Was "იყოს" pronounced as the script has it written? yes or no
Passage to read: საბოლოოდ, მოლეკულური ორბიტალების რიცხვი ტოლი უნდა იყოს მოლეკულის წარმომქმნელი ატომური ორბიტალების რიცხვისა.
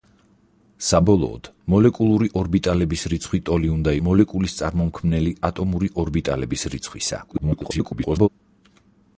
no